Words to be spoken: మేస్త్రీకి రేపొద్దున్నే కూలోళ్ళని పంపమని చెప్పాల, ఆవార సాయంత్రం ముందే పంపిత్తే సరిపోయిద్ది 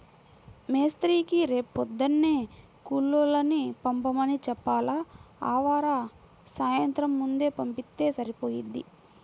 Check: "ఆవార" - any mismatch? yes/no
no